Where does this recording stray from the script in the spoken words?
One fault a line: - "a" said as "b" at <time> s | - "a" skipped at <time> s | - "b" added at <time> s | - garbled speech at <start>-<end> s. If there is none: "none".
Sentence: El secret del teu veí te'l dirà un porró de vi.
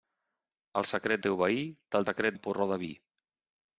- "del" skipped at 1.2 s
- "dirà" said as "secret" at 2.0 s